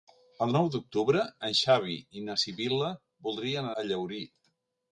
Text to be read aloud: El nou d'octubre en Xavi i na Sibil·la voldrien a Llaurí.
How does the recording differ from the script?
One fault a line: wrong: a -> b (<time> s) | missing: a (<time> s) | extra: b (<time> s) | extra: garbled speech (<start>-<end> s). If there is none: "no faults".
no faults